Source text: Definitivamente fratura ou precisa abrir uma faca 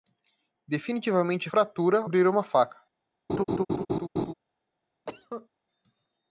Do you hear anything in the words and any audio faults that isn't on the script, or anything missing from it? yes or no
yes